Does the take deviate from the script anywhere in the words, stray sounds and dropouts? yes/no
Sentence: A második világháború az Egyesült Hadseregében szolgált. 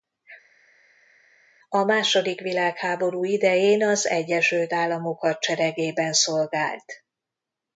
yes